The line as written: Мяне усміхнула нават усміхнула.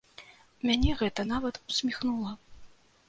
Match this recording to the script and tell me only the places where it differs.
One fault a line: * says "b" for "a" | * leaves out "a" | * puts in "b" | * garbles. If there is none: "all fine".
* says "гэта" for "усміхнула"